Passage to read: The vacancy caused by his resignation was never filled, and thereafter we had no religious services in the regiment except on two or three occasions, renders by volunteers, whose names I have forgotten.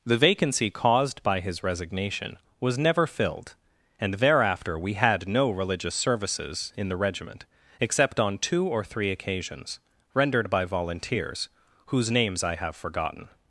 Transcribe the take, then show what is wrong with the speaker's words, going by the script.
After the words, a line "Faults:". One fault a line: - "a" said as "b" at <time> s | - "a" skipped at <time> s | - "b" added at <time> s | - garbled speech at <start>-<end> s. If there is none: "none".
The vacancy caused by his resignation was never filled, and thereafter we had no religious services in the regiment except on two or three occasions, rendered by volunteers, whose names I have forgotten.
Faults:
- "renders" said as "rendered" at 10.1 s